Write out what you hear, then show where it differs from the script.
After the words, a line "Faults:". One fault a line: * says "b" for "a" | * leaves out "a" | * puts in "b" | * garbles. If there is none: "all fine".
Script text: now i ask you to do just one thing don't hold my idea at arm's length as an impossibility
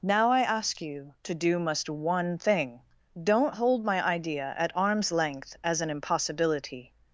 now i ask you to do must one thing don't hold my idea at arm's length as an impossibility
Faults:
* says "must" for "just"